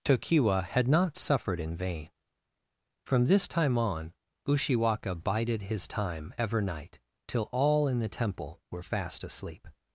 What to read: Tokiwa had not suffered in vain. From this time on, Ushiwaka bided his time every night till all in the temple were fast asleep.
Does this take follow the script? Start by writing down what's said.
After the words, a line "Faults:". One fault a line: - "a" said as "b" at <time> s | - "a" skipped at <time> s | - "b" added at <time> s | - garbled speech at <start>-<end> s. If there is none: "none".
Tokiwa had not suffered in vain. From this time on, Ushiwaka bided his time ever night till all in the temple were fast asleep.
Faults:
- "every" said as "ever" at 6.4 s